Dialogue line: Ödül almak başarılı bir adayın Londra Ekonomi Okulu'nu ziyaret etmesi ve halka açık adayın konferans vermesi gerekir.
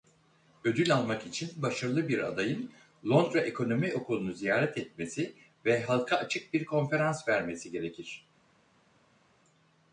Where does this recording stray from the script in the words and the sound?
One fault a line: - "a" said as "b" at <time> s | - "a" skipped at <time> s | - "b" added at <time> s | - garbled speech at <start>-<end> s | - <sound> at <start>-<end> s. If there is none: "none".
- "için" added at 1.3 s
- "adayın" said as "bir" at 6.5 s